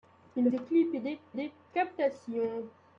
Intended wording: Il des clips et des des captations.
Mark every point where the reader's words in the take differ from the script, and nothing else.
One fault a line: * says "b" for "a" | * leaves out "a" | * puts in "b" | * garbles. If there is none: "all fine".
all fine